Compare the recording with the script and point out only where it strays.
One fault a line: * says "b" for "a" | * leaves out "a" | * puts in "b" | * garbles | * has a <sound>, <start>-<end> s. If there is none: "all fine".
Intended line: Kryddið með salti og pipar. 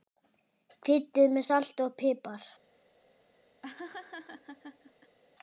* has a laugh, 3.6-5.2 s